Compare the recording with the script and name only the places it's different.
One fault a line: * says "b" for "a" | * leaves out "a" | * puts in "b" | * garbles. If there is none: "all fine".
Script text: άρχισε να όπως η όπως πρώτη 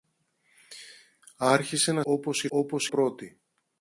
all fine